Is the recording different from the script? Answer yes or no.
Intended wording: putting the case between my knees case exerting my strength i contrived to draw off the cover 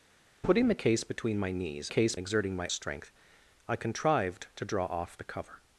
no